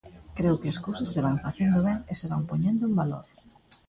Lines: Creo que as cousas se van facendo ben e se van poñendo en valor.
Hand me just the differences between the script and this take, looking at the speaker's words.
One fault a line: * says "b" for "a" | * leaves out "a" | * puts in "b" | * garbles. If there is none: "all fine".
all fine